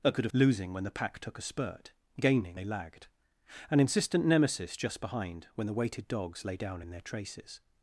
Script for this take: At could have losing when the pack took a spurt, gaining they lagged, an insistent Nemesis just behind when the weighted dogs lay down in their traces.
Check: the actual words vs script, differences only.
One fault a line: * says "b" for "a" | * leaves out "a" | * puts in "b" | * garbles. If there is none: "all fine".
all fine